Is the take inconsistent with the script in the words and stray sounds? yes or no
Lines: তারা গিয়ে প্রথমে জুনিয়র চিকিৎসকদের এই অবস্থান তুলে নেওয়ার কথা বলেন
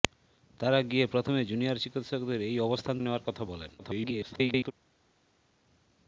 yes